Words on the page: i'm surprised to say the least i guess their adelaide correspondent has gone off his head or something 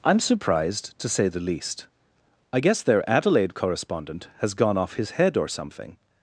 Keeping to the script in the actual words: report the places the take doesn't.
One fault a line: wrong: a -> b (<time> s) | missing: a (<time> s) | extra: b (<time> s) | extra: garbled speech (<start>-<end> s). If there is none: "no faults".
no faults